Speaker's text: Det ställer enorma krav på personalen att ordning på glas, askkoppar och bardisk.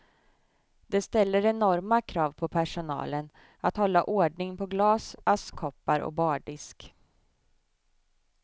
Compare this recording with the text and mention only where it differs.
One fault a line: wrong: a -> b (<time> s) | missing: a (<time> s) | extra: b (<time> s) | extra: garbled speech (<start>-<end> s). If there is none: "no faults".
extra: hålla (3.8 s)